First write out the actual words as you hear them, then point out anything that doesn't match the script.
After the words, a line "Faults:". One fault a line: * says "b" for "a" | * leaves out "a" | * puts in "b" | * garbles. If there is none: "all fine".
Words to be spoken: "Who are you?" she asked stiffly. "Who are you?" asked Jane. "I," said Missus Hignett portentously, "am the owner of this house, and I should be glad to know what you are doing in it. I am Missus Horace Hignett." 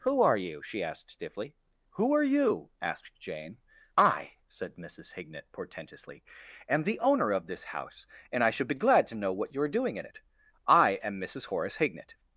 "Who are you?" she asked stiffly. "Who are you?" asked Jane. "I," said Missus Hignett portentously, "am the owner of this house, and I should be glad to know what you are doing in it. I am Missus Horace Hignett."
Faults:
all fine